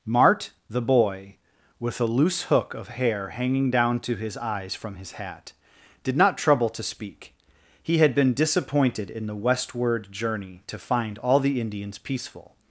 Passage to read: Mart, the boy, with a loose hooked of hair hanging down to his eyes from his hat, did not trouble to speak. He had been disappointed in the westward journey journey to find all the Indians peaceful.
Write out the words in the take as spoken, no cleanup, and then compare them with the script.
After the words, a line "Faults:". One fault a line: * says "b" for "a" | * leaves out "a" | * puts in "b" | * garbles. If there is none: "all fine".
Mart, the boy, with a loose hook of hair hanging down to his eyes from his hat, did not trouble to speak. He had been disappointed in the westward journey to find all the Indians peaceful.
Faults:
* says "hook" for "hooked"
* leaves out "journey"